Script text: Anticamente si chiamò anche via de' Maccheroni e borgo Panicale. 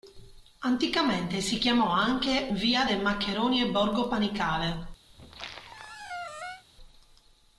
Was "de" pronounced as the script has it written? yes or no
yes